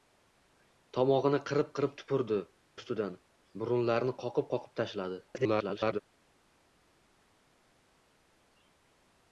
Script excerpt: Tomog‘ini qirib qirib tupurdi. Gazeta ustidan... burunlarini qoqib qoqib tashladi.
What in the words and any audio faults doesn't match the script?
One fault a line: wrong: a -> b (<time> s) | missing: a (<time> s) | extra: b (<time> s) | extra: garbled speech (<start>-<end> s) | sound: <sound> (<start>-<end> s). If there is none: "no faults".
missing: Gazeta (2.4 s)
extra: garbled speech (5.3-6.0 s)